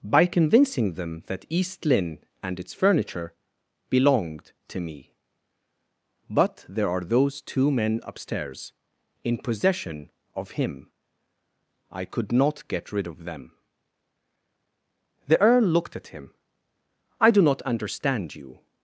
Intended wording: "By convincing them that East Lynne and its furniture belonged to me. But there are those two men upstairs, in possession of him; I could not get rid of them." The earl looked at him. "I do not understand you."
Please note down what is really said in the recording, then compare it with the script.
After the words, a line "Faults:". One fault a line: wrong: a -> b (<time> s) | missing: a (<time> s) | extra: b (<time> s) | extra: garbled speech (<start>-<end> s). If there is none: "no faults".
"By convincing them that East Lynne and its furniture belonged to me. But there are those two men upstairs, in possession of him; I could not get rid of them." The earl looked at him. "I do not understand you."
Faults:
no faults